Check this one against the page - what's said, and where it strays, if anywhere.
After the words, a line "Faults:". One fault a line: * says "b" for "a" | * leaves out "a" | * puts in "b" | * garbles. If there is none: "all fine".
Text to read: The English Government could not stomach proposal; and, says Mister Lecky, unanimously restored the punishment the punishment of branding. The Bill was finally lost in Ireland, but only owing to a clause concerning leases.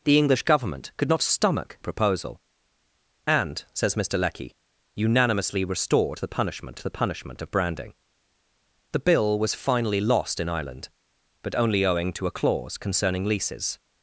The English Government could not stomach proposal; and, says Mister Lecky, unanimously restored the punishment the punishment of branding. The Bill was finally lost in Ireland, but only owing to a clause concerning leases.
Faults:
all fine